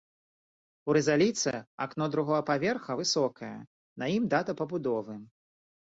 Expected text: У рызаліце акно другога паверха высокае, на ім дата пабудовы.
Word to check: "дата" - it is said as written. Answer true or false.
true